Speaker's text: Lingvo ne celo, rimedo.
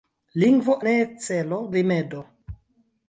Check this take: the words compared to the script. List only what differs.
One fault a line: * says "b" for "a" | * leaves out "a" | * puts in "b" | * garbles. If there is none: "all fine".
all fine